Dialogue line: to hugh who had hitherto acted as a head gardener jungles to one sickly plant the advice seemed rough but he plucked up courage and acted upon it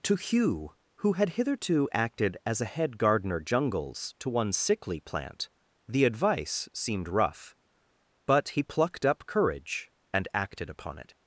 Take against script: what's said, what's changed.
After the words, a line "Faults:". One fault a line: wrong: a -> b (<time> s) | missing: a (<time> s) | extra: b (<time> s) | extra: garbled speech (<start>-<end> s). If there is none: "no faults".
to hugh who had hitherto acted as a head gardener jungles to one sickly plant the advice seemed rough but he plucked up courage and acted upon it
Faults:
no faults